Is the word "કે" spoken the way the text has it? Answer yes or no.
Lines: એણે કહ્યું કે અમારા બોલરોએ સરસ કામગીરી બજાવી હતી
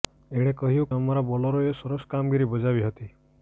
no